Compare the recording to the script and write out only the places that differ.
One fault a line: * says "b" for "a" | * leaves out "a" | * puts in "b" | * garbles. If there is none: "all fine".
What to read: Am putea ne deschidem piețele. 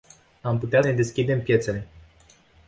all fine